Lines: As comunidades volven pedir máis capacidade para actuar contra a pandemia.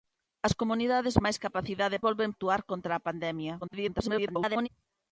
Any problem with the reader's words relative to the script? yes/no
yes